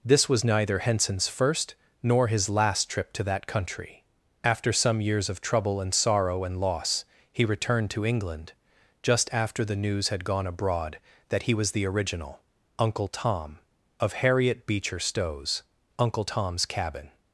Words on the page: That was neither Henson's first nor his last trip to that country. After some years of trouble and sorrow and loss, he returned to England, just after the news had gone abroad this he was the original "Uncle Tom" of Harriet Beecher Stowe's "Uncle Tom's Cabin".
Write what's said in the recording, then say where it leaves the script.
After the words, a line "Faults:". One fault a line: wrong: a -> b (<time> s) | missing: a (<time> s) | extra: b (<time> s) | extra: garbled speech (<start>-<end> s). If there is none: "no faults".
This was neither Henson's first nor his last trip to that country. After some years of trouble and sorrow and loss, he returned to England, just after the news had gone abroad that he was the original "Uncle Tom" of Harriet Beecher Stowe's "Uncle Tom's Cabin".
Faults:
wrong: That -> This (0.0 s)
wrong: this -> that (11.3 s)